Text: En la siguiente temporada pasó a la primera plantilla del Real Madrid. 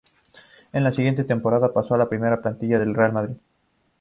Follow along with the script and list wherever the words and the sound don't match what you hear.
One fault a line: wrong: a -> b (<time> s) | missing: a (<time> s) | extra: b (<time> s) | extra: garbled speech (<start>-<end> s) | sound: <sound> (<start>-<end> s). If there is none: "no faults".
no faults